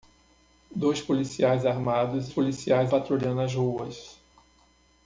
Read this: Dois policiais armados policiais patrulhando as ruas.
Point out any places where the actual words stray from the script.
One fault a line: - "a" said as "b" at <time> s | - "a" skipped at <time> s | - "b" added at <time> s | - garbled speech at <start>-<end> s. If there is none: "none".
none